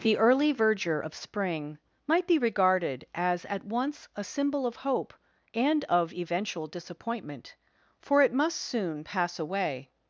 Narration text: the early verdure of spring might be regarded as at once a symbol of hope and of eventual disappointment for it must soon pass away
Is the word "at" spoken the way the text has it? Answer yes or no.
yes